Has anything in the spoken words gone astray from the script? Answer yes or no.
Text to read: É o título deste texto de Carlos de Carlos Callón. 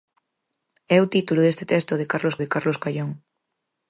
no